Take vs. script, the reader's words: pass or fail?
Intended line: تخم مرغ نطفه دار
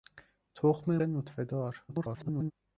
fail